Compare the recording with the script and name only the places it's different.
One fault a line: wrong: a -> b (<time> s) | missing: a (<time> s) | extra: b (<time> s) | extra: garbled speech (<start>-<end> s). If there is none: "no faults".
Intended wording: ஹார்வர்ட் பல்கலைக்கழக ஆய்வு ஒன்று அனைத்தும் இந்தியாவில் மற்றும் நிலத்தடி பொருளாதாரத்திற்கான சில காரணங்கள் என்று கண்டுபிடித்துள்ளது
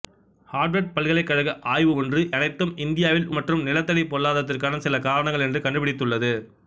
no faults